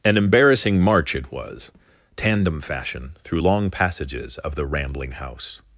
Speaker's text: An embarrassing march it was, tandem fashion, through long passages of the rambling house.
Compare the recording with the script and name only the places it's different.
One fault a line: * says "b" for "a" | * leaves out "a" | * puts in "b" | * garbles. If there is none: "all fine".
all fine